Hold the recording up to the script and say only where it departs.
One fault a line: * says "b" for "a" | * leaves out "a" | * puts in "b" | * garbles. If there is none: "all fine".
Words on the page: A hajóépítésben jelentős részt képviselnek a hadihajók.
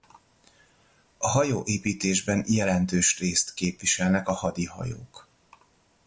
all fine